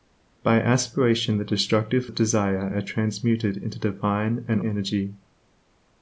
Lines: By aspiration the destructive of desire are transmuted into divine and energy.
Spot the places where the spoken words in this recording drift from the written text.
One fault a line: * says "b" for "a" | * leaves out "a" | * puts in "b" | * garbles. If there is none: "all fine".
all fine